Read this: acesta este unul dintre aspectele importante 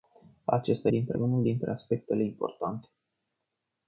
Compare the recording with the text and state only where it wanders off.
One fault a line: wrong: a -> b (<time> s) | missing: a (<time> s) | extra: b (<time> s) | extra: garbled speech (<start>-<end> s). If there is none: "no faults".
wrong: este -> dintre (0.9 s)